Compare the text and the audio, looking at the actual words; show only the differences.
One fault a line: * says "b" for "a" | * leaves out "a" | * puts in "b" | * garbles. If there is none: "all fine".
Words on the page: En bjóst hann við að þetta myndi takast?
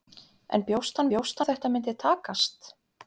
* says "bjóst" for "við"